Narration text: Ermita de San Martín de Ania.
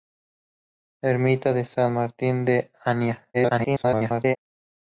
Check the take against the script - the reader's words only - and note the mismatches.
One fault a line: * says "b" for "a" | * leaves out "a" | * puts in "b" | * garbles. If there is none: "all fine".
* garbles